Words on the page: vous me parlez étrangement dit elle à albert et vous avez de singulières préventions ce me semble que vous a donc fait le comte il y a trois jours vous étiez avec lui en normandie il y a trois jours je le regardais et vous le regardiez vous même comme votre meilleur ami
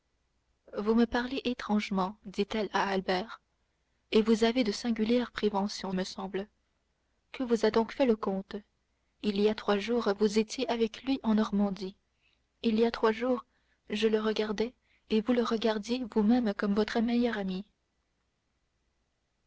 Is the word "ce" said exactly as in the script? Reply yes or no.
no